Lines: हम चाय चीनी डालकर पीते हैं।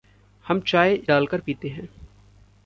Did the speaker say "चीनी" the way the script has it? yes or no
no